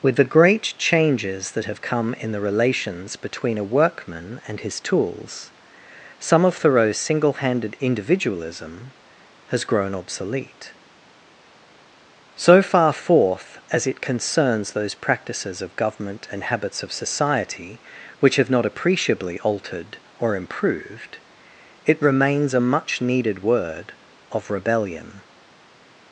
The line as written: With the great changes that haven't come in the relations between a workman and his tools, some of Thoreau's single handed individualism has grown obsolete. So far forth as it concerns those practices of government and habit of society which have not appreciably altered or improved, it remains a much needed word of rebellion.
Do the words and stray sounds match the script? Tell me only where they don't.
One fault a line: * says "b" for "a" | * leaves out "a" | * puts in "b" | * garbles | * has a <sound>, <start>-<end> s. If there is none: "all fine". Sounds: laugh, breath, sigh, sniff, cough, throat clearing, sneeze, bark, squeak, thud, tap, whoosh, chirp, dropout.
* says "have" for "haven't"
* says "habits" for "habit"